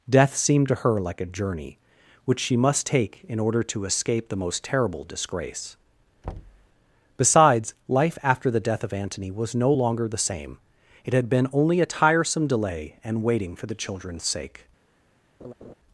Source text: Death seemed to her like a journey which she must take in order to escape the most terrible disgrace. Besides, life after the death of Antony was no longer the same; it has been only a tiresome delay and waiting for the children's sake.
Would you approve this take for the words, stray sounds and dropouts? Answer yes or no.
no